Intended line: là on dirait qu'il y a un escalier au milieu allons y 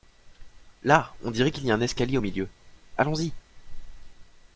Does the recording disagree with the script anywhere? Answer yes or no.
no